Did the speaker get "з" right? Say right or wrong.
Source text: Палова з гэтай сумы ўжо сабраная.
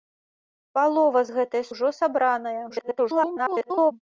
right